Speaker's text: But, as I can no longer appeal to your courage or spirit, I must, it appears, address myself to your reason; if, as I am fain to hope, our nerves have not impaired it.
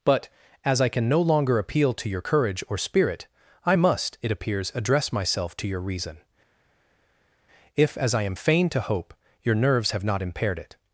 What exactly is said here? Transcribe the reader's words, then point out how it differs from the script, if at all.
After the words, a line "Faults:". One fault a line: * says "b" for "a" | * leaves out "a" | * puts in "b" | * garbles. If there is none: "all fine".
But, as I can no longer appeal to your courage or spirit, I must, it appears, address myself to your reason; if, as I am fain to hope, your nerves have not impaired it.
Faults:
* says "your" for "our"